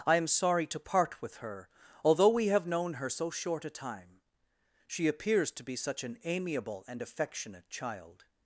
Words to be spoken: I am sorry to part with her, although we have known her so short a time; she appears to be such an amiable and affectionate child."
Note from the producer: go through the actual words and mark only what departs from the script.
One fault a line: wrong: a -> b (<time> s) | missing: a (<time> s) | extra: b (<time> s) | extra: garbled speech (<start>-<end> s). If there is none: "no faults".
no faults